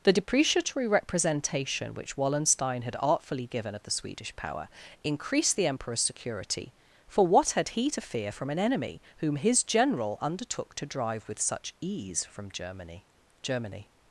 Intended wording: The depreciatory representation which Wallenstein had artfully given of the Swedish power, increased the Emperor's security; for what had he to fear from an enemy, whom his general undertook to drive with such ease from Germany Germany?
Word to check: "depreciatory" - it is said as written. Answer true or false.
true